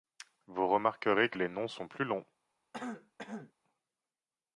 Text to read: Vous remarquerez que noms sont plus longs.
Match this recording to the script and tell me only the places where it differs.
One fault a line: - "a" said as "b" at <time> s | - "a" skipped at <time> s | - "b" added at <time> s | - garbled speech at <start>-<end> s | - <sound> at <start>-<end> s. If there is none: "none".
- "les" added at 1.3 s
- throat clearing at 2.7-3.5 s